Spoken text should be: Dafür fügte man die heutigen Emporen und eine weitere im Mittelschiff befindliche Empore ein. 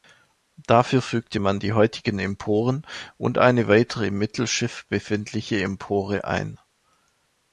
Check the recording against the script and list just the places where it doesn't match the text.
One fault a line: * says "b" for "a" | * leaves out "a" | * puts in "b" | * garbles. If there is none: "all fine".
all fine